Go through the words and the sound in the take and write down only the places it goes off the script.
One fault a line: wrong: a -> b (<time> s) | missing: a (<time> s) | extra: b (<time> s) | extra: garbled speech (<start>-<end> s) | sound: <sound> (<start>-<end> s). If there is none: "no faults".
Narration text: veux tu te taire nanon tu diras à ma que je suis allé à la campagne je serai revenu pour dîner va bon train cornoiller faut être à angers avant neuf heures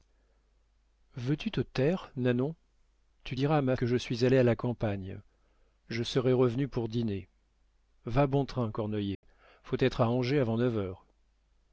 sound: dropout (9.1-9.2 s)